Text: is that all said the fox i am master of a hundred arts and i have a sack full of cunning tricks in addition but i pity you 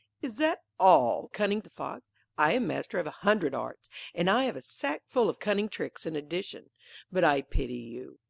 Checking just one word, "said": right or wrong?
wrong